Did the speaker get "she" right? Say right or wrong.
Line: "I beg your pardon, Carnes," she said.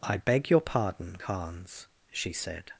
right